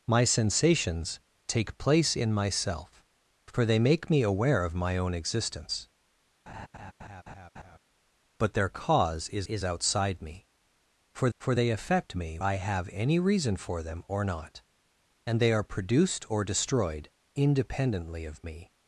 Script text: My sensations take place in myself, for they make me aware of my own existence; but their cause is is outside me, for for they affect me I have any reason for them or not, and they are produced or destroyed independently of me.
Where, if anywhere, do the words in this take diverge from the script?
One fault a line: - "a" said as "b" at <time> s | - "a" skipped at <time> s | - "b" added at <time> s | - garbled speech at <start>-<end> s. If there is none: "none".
none